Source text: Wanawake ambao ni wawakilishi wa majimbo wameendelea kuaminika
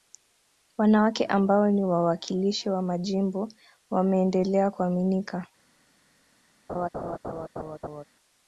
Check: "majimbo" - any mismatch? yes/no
no